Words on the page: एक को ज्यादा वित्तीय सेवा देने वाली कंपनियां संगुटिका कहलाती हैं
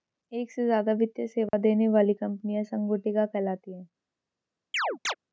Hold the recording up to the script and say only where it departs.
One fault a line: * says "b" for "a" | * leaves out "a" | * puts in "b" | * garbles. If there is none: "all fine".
* says "से" for "को"